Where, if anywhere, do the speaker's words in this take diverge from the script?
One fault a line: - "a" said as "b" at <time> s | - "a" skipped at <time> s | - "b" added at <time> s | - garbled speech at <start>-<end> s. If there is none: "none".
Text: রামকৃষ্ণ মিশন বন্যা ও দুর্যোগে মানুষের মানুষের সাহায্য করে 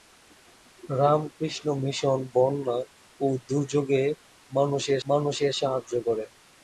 none